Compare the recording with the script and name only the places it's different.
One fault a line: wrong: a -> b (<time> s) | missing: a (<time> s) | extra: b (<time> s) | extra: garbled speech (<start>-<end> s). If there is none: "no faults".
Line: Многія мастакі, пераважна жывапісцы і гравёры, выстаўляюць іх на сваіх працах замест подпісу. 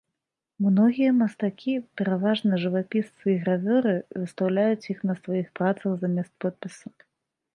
no faults